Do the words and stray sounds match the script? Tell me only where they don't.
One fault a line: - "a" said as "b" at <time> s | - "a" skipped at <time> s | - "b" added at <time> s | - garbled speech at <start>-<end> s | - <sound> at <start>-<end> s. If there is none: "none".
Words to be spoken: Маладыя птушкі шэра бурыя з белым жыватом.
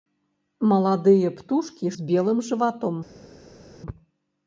- "шэра бурыя" skipped at 1.9 s